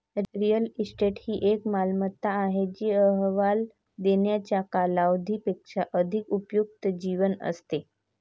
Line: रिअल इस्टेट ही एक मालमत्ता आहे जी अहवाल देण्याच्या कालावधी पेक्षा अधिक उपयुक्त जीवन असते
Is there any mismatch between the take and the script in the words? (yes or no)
no